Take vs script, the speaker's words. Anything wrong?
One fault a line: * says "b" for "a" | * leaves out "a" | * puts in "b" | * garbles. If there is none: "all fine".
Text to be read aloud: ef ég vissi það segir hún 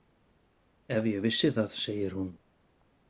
all fine